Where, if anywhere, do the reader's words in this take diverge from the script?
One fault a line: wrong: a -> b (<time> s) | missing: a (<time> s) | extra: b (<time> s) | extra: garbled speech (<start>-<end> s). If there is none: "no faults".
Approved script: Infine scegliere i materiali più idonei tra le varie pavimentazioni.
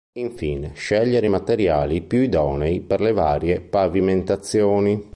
wrong: tra -> per (2.8 s)